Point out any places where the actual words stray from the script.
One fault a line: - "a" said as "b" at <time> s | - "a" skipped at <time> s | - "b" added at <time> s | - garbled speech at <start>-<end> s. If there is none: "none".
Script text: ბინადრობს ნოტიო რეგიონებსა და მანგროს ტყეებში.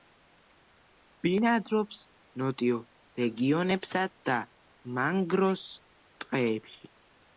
none